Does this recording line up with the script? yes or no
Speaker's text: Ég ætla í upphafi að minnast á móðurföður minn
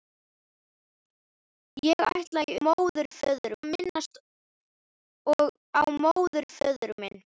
no